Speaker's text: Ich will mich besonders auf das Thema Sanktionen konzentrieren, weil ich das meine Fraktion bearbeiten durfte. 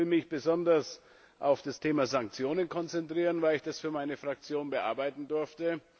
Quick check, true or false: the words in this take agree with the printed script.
false